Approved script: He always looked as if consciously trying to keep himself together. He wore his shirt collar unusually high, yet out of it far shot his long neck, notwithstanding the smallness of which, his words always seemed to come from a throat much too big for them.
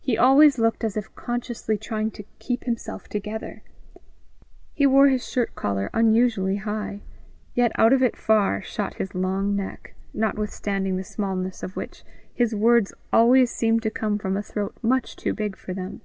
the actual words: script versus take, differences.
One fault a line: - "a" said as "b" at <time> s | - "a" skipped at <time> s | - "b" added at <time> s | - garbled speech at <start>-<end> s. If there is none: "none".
none